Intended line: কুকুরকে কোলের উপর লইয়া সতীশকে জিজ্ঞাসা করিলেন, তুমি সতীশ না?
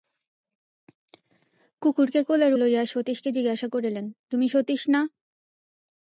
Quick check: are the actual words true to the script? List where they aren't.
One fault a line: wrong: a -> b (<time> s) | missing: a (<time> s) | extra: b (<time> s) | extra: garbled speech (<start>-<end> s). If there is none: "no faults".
missing: উপর (2.5 s)